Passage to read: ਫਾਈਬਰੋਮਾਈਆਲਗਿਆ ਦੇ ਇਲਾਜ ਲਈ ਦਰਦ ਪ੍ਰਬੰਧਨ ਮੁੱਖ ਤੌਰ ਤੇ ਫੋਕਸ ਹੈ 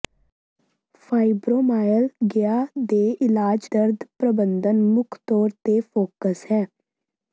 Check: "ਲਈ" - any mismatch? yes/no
yes